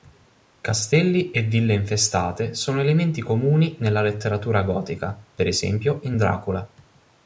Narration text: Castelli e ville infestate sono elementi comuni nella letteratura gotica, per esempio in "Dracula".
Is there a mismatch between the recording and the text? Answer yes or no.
no